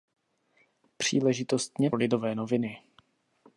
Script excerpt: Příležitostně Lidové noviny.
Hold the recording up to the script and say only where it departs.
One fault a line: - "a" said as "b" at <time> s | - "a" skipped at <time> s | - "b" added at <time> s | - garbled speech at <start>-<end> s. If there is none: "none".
none